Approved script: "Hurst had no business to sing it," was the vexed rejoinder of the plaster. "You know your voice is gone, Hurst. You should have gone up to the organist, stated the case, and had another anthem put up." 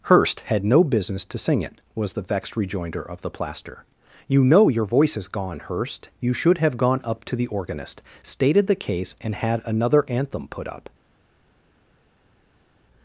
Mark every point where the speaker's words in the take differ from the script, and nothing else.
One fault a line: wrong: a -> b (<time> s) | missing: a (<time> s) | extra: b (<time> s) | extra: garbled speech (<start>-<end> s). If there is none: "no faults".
no faults